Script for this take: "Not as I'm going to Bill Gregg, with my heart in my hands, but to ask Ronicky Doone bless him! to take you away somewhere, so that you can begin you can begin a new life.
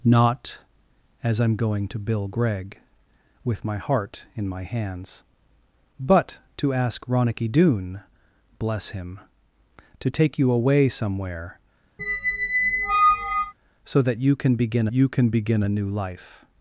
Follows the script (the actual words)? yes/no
yes